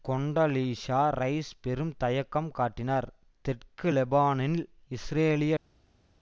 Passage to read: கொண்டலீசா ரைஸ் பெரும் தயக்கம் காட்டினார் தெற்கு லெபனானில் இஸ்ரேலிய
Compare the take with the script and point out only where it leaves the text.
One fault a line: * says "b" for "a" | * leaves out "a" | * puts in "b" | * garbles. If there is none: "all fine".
all fine